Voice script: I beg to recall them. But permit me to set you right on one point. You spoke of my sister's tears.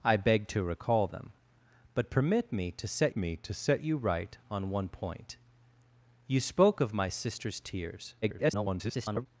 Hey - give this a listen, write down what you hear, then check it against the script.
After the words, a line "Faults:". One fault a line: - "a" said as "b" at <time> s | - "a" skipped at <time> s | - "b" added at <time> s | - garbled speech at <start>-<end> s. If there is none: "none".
I beg to recall them. But permit me to set me to set you right on one point. You spoke of my sister's tears. [garbled]
Faults:
- "me to set" added at 3.1 s
- garbled speech at 8.2-9.3 s